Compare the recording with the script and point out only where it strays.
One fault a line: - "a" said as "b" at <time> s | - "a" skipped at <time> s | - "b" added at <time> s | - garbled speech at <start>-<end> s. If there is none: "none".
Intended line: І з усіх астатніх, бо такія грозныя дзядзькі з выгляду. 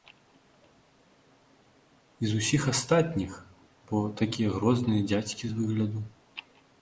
none